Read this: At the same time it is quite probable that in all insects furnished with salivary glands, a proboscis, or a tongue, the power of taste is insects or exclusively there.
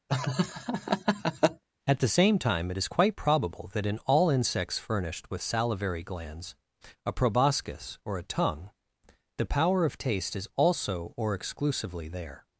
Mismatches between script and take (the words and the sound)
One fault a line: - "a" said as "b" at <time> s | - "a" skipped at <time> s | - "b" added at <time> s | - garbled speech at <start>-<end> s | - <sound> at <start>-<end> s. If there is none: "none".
- laugh at 0.1-1.6 s
- "insects" said as "also" at 10.6 s